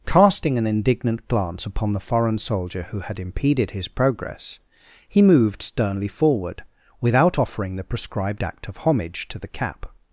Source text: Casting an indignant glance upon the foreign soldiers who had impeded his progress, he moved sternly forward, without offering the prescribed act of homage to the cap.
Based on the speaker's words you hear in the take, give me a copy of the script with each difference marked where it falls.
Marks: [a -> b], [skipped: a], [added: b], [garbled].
Casting an indignant glance upon the foreign [soldiers -> soldier] who had impeded his progress, he moved sternly forward, without offering the prescribed act of homage to the cap.